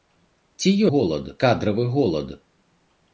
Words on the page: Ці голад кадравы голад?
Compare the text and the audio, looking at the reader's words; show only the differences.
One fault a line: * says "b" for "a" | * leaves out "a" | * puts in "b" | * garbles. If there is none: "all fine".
all fine